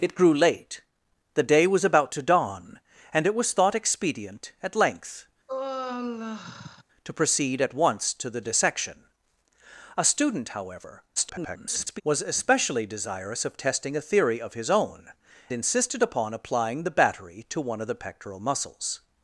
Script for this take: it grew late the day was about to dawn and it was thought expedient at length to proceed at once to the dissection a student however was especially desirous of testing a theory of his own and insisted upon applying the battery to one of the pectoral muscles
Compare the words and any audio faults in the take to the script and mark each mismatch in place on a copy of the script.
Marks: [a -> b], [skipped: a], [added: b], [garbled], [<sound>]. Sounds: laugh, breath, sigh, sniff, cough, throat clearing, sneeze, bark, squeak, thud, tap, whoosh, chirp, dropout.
it grew late the day was about to dawn and it was thought expedient at length [sigh] to proceed at once to the dissection a student however [garbled] was especially desirous of testing a theory of his own [skipped: and] insisted upon applying the battery to one of the pectoral muscles